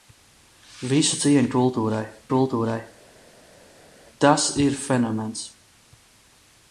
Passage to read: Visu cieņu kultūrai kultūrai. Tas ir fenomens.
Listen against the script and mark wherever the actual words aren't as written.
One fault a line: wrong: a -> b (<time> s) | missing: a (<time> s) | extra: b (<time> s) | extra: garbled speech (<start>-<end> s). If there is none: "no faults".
no faults